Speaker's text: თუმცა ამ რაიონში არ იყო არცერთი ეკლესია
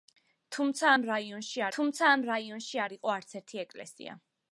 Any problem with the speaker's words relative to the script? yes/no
yes